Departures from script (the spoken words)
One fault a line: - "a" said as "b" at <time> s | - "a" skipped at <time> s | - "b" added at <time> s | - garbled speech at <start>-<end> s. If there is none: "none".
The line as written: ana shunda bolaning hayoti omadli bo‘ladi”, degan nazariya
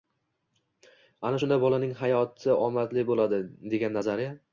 none